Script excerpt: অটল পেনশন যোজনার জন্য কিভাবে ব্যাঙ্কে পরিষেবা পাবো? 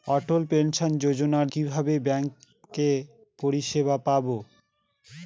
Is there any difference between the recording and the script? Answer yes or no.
yes